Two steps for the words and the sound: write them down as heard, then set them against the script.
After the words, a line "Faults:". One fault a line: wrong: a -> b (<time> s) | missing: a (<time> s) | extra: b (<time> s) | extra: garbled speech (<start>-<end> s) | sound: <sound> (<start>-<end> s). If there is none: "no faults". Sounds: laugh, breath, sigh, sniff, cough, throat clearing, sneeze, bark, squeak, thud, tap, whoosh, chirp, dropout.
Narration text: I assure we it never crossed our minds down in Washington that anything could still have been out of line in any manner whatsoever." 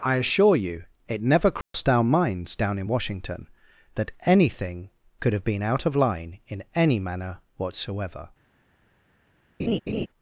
I assure you it never crossed our minds down in Washington that anything could have been out of line in any manner whatsoever."
Faults:
wrong: we -> you (0.6 s)
sound: dropout (1.6-1.7 s)
missing: still (5.3 s)
sound: laugh (9.6-10.1 s)